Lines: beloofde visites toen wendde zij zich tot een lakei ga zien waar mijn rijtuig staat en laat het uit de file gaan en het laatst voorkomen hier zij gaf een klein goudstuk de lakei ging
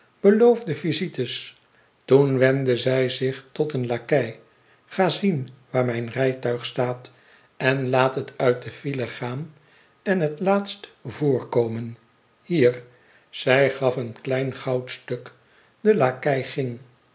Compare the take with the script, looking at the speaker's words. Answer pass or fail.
pass